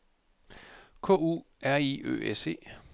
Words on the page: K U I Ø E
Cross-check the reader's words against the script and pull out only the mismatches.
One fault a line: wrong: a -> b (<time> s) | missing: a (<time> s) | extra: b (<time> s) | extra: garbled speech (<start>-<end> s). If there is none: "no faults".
extra: R (1.6 s)
extra: S (2.3 s)